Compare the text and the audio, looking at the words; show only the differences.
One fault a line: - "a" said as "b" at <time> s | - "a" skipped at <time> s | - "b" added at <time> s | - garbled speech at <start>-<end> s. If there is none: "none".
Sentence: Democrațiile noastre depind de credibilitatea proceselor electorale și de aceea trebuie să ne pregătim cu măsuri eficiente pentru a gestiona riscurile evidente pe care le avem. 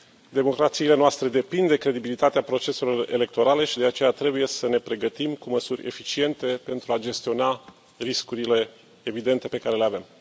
none